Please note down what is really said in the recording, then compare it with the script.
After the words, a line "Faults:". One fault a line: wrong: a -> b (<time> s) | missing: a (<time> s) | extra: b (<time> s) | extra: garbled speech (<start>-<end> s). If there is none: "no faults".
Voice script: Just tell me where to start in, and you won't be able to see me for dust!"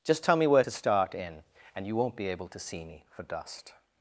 Just tell me where to start in, and you won't be able to see me for dust!"
Faults:
no faults